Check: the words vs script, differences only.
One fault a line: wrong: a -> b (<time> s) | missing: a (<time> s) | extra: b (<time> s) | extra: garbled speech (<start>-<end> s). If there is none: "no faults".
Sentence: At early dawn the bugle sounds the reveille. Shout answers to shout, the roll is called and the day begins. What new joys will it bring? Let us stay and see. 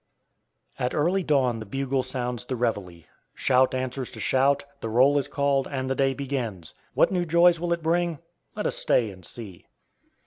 no faults